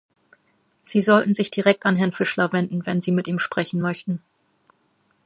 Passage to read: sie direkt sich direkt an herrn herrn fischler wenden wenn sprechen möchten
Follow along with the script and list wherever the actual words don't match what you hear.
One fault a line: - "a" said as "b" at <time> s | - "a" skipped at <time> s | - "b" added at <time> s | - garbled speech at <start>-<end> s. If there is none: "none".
- "direkt" said as "sollten" at 1.0 s
- "herrn" skipped at 2.1 s
- "sie mit ihm" added at 3.0 s